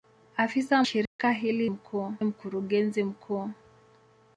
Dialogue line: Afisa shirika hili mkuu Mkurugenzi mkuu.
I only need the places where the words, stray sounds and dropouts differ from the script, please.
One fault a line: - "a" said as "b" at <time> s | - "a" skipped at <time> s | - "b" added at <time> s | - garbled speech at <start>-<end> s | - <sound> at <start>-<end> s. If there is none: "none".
- dropout at 1.1-1.2 s